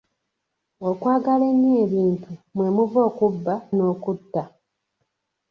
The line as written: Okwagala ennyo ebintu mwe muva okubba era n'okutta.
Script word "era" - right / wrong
wrong